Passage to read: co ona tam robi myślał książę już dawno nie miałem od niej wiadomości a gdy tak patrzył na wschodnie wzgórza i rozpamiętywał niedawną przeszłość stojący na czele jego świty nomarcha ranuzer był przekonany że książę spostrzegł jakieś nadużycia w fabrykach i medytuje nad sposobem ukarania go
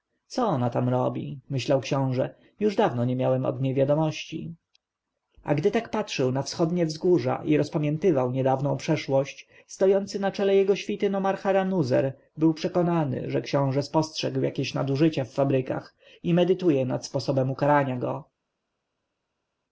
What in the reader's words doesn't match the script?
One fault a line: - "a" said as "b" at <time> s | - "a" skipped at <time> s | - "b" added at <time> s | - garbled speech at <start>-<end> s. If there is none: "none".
none